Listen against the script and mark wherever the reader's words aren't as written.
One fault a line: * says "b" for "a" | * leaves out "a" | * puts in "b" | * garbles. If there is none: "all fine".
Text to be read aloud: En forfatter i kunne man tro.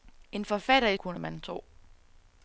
all fine